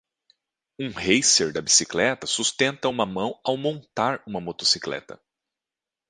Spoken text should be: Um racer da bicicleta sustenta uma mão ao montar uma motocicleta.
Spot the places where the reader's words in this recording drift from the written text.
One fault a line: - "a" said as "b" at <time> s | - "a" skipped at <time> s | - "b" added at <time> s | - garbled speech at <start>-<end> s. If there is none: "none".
none